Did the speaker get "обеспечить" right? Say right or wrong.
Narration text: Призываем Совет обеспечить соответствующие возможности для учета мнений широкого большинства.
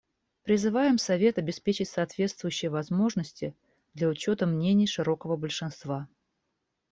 right